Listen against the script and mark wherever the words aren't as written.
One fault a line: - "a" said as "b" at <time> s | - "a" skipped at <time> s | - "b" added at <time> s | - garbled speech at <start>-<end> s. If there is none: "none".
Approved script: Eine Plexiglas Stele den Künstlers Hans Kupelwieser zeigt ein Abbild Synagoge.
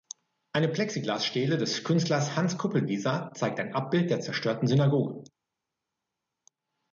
- "den" said as "des" at 1.6 s
- "der zerstörten" added at 4.1 s